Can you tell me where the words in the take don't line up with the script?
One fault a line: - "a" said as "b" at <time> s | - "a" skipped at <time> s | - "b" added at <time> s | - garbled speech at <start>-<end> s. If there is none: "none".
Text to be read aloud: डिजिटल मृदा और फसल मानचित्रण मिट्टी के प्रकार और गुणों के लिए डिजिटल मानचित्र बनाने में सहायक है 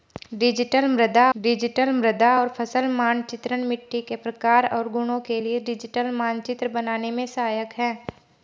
- "डिजिटल मृदा" added at 1.4 s